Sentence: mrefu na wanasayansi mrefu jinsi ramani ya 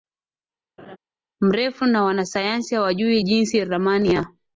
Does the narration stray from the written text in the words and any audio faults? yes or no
yes